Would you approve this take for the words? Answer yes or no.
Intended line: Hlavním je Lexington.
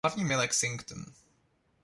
yes